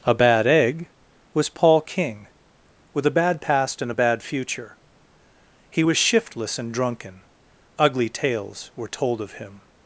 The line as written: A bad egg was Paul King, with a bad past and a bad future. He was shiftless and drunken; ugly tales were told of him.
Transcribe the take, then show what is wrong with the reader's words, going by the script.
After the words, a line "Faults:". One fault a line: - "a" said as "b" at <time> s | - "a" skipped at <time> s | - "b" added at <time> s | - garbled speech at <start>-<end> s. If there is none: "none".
A bad egg was Paul King, with a bad past and a bad future. He was shiftless and drunken; ugly tales were told of him.
Faults:
none